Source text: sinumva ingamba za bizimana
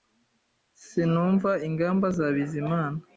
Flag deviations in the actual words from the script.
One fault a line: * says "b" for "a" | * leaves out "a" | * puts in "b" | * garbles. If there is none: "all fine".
all fine